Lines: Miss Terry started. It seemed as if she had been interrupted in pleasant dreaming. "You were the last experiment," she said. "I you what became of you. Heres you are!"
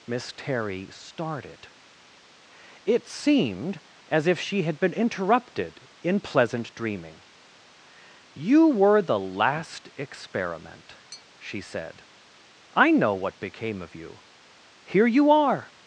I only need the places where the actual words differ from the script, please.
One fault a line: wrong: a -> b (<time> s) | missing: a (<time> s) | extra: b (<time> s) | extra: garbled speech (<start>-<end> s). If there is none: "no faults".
wrong: you -> know (12.9 s)
wrong: Heres -> Here (14.8 s)